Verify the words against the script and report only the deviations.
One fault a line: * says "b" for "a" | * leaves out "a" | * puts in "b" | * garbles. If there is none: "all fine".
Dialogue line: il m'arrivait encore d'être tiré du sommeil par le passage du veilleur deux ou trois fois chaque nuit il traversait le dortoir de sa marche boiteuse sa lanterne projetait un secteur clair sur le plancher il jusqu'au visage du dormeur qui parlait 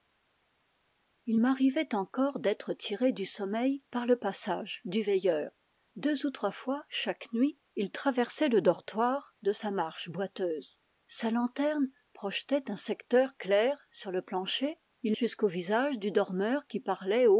all fine